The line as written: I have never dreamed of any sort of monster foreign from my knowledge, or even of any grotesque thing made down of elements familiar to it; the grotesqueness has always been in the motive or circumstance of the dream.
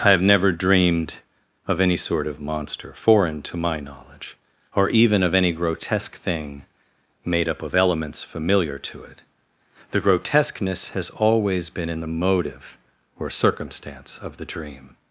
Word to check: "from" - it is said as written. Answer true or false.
false